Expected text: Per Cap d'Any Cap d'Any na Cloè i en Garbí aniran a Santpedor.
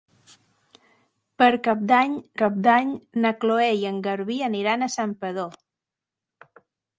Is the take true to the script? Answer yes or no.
yes